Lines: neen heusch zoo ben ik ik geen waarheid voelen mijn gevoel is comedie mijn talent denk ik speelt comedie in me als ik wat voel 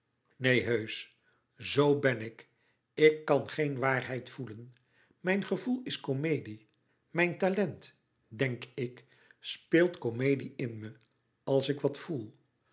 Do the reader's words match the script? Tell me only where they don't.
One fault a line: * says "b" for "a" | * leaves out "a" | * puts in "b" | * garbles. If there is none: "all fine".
* puts in "kan"